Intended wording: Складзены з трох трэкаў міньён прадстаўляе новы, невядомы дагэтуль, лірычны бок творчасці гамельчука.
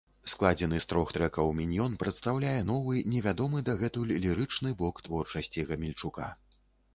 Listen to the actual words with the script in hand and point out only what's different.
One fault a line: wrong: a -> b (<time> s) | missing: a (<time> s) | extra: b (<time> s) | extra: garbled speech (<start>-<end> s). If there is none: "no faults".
no faults